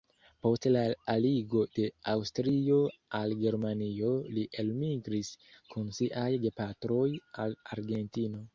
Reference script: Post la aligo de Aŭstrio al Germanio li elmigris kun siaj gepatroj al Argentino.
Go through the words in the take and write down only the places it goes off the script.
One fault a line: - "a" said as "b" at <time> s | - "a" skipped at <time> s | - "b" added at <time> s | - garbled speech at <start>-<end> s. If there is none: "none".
none